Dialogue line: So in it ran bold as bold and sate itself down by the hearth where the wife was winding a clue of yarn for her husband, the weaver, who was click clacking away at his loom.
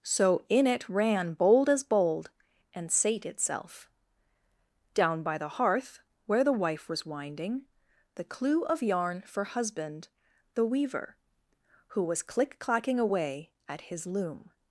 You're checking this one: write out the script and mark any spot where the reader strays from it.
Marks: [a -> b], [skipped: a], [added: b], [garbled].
So in it ran bold as bold and sate itself down by the hearth where the wife was winding [a -> the] clue of yarn for [skipped: her] husband, the weaver, who was click clacking away at his loom.